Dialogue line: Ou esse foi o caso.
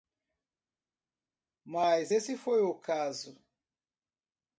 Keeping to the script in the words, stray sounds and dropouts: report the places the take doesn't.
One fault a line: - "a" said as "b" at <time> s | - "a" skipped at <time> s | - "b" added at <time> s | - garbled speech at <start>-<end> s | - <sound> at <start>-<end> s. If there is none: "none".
- "Ou" said as "Mas" at 1.6 s